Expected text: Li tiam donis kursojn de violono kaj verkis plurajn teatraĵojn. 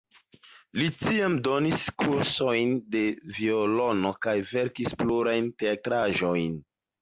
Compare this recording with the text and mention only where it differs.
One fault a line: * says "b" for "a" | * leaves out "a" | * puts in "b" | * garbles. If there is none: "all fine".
all fine